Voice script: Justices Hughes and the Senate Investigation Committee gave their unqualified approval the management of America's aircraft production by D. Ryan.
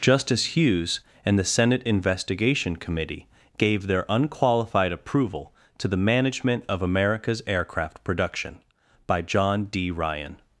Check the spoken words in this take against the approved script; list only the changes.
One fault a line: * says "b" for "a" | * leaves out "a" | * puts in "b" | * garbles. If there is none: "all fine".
* says "Justice" for "Justices"
* puts in "to"
* puts in "John"